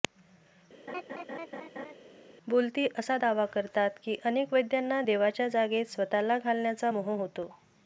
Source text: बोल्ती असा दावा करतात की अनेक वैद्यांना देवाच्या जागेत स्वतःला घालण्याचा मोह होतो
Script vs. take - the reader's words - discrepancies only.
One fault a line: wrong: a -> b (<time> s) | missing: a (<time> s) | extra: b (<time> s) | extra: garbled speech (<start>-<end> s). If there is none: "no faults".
no faults